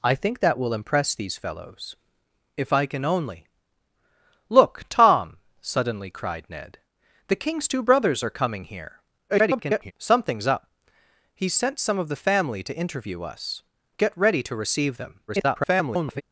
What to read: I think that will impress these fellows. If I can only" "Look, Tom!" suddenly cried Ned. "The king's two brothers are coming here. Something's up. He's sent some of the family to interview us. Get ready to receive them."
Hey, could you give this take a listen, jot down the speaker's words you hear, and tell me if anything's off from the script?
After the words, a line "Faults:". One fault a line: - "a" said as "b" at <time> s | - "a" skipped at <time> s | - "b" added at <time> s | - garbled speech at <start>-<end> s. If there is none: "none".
I think that will impress these fellows. If I can only" "Look, Tom!" suddenly cried Ned. "The king's two brothers are coming here. [garbled] Something's up. He's sent some of the family to interview us. Get ready to receive them." [garbled]
Faults:
- garbled speech at 9.3-9.9 s
- garbled speech at 15.3-16.2 s